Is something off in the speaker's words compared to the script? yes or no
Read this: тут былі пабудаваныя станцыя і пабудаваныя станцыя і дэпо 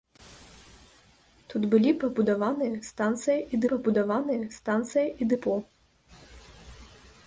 no